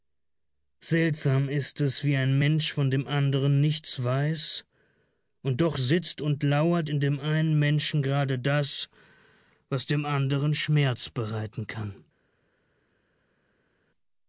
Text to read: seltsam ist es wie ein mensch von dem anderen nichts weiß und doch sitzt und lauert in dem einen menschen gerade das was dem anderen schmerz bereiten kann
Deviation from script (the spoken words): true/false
false